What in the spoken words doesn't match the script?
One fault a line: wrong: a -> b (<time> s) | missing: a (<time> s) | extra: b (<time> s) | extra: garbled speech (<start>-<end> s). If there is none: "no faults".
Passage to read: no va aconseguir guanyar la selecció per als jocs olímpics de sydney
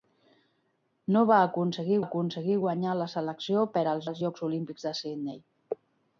extra: aconseguir (2.0 s)
extra: als (4.1 s)